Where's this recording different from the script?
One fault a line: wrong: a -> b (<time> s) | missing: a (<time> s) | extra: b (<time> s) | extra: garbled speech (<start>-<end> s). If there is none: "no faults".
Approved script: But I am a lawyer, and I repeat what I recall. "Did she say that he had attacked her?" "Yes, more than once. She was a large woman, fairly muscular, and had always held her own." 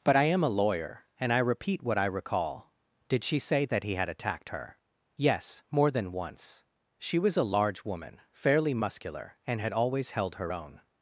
no faults